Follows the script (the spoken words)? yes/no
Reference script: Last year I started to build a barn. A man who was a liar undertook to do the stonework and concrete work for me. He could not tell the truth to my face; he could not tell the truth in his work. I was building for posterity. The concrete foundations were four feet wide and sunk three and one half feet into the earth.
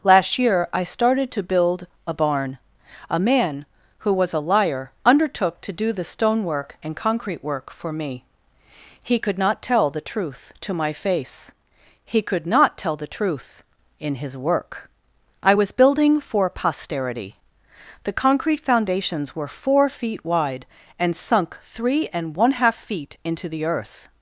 yes